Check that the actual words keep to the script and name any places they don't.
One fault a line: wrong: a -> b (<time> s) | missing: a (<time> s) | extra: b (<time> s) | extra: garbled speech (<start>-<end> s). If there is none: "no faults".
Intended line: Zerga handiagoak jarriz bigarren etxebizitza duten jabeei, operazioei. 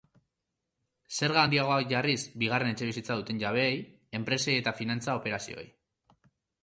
extra: enpresei eta finantza (4.2 s)